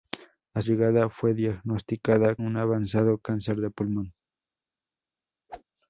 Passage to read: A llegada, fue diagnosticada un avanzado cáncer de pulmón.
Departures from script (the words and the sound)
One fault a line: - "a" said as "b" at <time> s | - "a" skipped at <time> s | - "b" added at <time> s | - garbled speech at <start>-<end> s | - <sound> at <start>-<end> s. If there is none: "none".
- whoosh at 5.5-5.6 s